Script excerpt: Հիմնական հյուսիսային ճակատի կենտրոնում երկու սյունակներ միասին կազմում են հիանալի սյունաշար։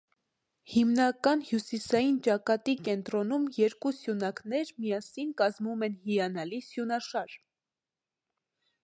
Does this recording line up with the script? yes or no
yes